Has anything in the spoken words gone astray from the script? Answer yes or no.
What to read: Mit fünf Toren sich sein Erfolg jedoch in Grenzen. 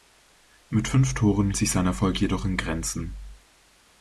no